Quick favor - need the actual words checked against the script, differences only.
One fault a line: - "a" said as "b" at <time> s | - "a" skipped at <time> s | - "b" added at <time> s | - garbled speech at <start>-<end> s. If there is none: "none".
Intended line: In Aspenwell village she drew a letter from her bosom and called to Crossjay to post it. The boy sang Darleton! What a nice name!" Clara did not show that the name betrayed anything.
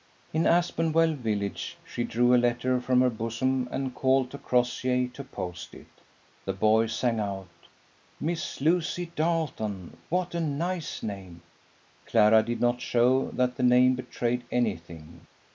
- "out Miss Lucy" added at 7.2 s